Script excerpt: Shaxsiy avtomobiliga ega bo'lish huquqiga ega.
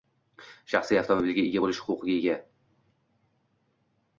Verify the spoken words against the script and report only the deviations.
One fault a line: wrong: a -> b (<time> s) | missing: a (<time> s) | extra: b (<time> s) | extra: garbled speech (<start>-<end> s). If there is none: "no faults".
no faults